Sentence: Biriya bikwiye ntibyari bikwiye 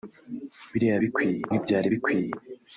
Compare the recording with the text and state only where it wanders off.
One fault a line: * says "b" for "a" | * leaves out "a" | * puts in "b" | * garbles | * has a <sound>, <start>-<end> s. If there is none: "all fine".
all fine